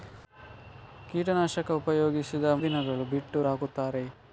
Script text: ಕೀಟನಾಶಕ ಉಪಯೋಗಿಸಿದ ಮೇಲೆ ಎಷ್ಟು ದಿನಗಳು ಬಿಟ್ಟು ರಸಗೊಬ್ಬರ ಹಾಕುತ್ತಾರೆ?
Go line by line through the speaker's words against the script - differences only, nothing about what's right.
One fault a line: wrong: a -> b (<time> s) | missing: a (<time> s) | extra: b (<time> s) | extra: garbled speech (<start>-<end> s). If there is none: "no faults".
missing: ಮೇಲೆ ಎಷ್ಟು (2.5 s)
missing: ರಸಗೊಬ್ಬರ (3.4 s)